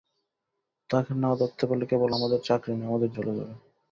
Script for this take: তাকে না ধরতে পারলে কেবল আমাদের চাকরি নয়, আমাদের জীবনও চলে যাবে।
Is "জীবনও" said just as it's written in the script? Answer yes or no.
no